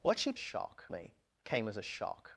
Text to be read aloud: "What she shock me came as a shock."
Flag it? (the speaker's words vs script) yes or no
no